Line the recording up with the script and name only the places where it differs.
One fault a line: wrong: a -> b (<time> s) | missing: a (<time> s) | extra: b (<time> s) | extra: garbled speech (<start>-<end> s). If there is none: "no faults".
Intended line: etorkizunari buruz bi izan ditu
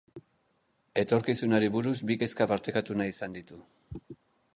extra: kezka partekatu nahi (2.2 s)